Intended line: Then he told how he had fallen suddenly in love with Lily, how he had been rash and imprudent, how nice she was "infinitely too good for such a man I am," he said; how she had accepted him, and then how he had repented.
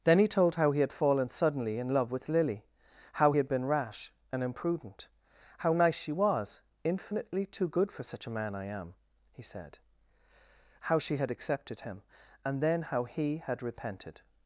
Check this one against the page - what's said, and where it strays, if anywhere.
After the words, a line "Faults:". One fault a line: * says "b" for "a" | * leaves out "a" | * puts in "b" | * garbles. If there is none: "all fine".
Then he told how he had fallen suddenly in love with Lily, how he had been rash and imprudent, how nice she was "infinitely too good for such a man I am," he said; how she had accepted him, and then how he had repented.
Faults:
all fine